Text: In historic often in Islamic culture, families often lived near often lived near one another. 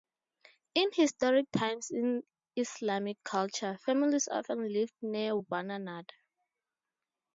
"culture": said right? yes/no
yes